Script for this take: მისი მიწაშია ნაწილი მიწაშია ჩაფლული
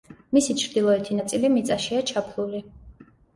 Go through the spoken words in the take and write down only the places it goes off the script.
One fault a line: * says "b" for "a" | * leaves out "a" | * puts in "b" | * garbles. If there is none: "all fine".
* says "ჩრდილოეთი" for "მიწაშია"